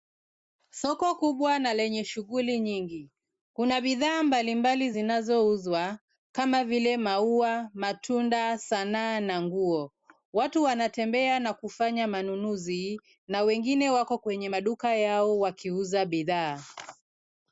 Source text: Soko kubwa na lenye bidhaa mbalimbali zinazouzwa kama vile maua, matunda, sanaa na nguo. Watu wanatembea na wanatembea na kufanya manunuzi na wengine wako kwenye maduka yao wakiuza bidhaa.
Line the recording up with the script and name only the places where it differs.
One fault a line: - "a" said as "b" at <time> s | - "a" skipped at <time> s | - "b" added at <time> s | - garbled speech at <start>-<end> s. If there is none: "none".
- "shughuli nyingi Kuna" added at 2.0 s
- "wanatembea na" skipped at 11.5 s